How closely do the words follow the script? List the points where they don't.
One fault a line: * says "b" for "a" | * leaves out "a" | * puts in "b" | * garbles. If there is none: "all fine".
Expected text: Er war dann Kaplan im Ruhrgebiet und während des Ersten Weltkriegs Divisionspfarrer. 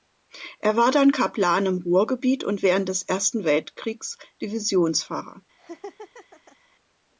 all fine